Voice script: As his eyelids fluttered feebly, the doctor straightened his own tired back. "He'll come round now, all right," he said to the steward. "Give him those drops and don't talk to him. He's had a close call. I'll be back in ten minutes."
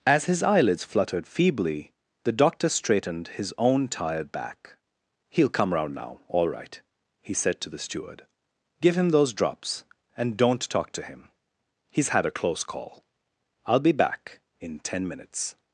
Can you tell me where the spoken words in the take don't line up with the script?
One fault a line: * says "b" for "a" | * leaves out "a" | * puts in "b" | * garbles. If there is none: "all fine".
all fine